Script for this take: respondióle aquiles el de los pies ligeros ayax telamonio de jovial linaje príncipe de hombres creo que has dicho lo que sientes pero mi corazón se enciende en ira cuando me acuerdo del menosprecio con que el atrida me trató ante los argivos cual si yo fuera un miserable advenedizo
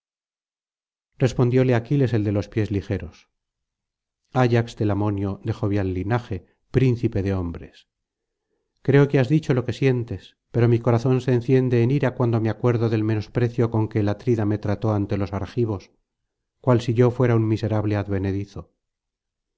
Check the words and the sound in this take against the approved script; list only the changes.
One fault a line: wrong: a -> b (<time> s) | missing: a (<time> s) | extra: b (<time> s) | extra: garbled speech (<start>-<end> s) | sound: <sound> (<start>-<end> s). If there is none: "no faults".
no faults